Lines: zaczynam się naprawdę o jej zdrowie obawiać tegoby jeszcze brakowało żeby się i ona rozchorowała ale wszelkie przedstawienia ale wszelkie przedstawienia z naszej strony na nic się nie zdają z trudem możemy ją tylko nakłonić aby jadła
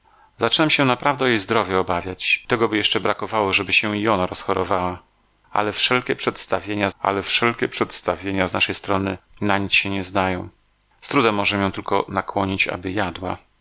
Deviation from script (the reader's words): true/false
false